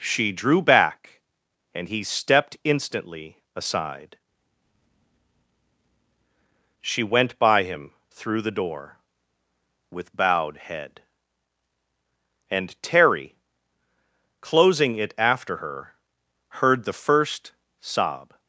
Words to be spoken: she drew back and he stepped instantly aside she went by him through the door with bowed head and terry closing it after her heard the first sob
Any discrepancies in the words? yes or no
no